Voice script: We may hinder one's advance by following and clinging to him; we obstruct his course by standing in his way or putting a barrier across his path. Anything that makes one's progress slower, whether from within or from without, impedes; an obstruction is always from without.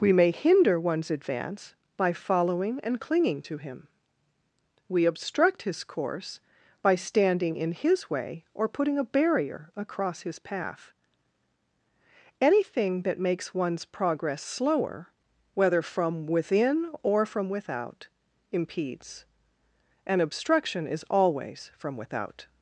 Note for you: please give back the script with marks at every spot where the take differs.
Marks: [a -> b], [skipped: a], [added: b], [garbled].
We may hinder one's advance by following and clinging to him; we obstruct his course by standing in his way or putting a barrier across his path. Anything that makes one's progress slower, whether from within or from without, impedes; an obstruction is always from without.